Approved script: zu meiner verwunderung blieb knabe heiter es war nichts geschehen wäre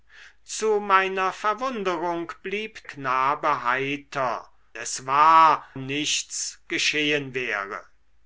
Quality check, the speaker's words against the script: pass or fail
pass